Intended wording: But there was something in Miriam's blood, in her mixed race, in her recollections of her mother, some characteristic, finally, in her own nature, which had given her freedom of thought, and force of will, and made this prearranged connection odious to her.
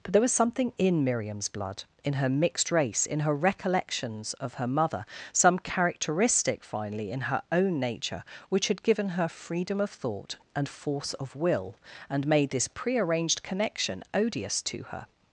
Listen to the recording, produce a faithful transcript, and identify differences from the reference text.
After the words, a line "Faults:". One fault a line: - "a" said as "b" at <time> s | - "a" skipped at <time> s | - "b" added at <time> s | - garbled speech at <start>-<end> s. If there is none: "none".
But there was something in Miriam's blood, in her mixed race, in her recollections of her mother, some characteristic, finally, in her own nature, which had given her freedom of thought, and force of will, and made this prearranged connection odious to her.
Faults:
none